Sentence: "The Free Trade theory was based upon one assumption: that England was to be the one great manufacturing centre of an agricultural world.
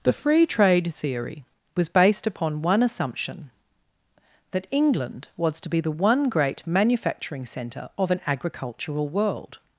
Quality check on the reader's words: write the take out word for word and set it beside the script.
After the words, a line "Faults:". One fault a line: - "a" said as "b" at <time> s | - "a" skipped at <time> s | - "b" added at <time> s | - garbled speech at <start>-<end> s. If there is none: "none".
"The Free Trade theory was based upon one assumption: that England was to be the one great manufacturing centre of an agricultural world.
Faults:
none